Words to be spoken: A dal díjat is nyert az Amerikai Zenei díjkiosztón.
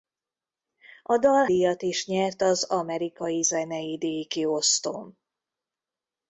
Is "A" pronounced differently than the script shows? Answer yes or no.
no